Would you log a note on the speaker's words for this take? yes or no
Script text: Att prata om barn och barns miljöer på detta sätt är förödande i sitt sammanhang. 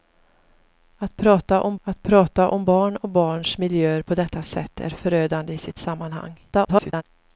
yes